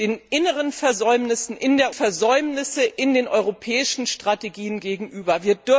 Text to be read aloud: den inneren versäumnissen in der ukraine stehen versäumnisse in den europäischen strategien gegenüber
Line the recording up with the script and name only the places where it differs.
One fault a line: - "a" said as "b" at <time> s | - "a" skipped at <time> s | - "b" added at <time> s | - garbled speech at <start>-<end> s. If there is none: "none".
- "ukraine stehen" skipped at 1.9 s